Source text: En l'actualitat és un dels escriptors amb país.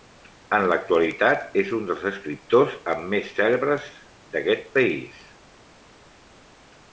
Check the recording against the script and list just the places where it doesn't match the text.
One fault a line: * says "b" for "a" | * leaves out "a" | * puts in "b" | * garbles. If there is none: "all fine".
* puts in "més cèlebres d'aquest"